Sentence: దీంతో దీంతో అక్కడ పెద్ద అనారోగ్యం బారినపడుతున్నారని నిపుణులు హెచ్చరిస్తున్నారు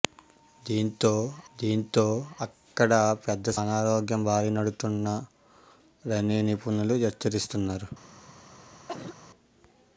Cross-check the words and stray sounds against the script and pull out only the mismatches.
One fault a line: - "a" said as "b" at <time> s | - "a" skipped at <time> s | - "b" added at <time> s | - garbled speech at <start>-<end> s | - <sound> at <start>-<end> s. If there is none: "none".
- cough at 8.9-9.2 s